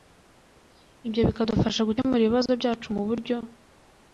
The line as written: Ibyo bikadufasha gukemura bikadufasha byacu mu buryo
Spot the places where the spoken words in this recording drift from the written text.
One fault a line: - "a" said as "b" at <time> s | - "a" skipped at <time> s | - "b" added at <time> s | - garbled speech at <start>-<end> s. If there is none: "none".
- "bikadufasha" said as "ibibazo" at 2.2 s